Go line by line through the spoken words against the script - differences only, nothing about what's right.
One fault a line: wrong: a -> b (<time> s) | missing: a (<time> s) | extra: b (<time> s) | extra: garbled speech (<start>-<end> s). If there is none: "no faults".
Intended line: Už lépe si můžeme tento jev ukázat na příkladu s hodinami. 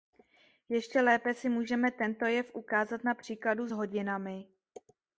wrong: Už -> Ještě (0.7 s)